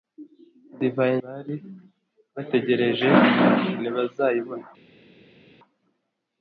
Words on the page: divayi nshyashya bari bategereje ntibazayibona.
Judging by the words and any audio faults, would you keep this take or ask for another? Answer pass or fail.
fail